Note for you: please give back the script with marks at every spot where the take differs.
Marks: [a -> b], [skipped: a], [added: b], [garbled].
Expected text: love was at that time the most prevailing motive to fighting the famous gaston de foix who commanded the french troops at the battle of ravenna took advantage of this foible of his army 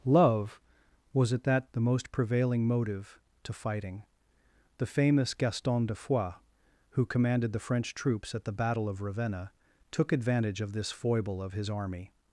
love was at that [skipped: time] the most prevailing motive to fighting the famous gaston de foix who commanded the french troops at the battle of ravenna took advantage of this foible of his army